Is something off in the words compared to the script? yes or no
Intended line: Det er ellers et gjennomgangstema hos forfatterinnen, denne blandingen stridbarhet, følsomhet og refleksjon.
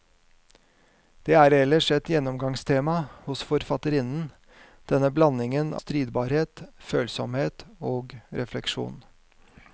no